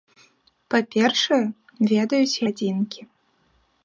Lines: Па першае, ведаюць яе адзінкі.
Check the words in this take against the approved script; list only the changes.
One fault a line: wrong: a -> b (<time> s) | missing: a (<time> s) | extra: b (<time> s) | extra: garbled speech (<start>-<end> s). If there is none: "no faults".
missing: яе (2.4 s)